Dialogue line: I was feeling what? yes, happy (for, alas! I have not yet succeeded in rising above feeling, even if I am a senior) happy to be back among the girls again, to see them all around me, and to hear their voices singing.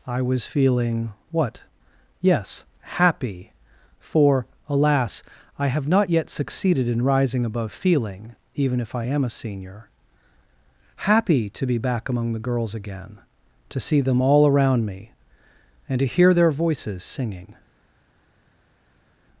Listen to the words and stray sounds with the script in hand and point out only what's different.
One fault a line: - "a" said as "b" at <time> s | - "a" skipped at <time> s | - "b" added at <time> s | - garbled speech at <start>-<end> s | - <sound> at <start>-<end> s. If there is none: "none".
none